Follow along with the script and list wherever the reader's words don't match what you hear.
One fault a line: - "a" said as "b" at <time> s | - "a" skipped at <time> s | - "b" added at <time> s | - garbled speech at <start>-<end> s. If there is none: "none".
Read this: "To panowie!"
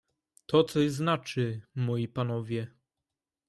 - "coś znaczy moi" added at 0.6 s